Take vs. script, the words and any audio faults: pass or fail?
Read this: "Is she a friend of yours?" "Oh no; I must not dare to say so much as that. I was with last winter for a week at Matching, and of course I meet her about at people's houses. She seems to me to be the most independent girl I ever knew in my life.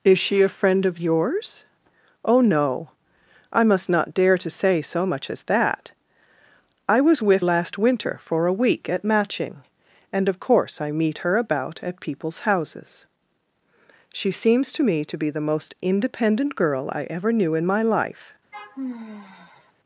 fail